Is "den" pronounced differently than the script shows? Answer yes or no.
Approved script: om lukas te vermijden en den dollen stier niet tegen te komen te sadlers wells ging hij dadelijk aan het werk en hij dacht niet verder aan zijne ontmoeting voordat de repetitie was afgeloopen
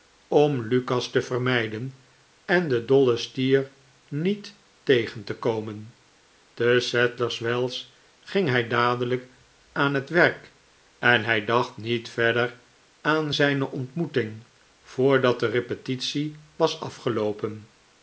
no